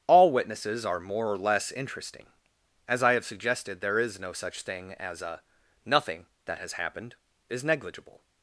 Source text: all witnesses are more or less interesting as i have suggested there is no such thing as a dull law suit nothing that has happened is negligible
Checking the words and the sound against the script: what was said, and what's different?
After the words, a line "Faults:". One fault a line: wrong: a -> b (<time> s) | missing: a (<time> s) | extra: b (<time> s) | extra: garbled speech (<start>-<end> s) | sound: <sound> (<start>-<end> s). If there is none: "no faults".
all witnesses are more or less interesting as i have suggested there is no such thing as a nothing that has happened is negligible
Faults:
missing: dull law suit (5.4 s)